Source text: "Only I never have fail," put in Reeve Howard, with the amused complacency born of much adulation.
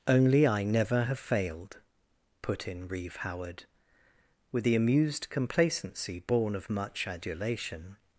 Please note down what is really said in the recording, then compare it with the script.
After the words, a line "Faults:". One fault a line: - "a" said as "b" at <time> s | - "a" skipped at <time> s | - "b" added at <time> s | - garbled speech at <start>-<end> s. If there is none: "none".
"Only I never have failed," put in Reeve Howard, with the amused complacency born of much adulation.
Faults:
- "fail" said as "failed" at 1.2 s